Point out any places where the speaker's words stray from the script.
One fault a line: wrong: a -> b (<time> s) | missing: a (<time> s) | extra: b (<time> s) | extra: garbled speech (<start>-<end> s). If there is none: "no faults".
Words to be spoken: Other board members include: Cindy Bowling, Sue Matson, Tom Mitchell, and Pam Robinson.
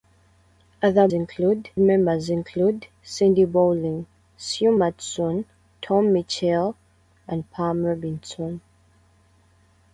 wrong: board -> include (1.1 s)